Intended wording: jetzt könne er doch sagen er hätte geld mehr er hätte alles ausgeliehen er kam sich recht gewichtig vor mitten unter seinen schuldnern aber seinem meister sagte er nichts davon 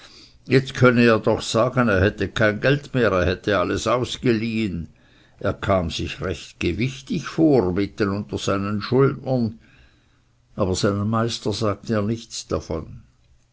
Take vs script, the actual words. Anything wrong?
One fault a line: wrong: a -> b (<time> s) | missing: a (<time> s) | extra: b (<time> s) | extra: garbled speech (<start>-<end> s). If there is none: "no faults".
extra: kein (2.3 s)